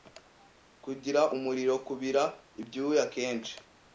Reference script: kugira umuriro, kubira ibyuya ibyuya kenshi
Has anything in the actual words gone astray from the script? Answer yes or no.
yes